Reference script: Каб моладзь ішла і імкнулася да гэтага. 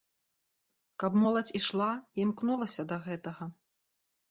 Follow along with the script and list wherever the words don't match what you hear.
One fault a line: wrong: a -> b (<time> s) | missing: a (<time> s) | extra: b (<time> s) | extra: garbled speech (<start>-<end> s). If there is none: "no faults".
no faults